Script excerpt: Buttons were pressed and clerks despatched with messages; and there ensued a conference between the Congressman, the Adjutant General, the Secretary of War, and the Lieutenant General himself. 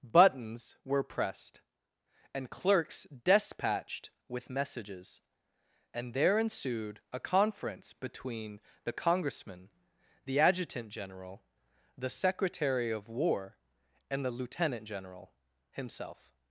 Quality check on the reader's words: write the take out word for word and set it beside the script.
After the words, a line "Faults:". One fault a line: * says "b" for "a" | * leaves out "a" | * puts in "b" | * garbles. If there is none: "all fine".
Buttons were pressed and clerks despatched with messages; and there ensued a conference between the Congressman, the Adjutant General, the Secretary of War, and the Lieutenant General himself.
Faults:
all fine